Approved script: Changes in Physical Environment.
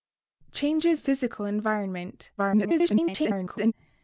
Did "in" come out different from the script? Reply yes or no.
yes